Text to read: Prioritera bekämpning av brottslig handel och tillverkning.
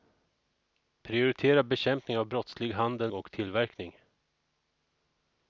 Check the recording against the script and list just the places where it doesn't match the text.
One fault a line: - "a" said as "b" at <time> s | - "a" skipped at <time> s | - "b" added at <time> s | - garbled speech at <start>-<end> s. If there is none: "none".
none